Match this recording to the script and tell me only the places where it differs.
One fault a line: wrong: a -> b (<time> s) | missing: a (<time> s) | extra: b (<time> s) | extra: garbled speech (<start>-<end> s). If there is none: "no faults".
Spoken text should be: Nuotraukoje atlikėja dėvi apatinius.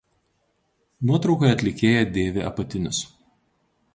no faults